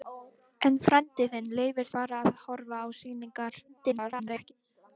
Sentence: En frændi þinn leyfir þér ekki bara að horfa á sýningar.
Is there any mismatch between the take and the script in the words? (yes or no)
yes